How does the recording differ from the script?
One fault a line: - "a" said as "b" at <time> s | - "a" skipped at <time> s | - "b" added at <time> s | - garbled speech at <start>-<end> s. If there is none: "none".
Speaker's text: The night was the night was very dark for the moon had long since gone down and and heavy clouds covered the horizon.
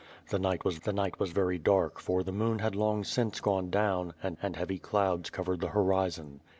none